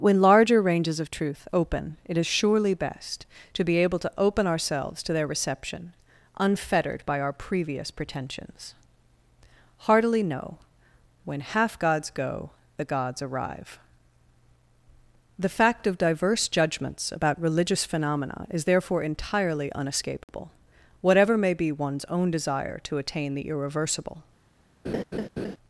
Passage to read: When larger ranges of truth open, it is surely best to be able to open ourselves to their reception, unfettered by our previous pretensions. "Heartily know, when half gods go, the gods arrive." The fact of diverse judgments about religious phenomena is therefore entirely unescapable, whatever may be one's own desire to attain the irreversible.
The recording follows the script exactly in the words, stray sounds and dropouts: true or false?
false